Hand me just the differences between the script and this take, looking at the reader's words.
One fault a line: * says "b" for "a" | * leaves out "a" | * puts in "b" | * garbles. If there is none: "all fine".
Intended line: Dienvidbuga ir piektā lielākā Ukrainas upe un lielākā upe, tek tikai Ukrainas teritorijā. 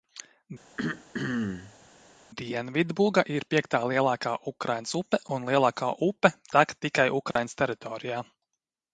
all fine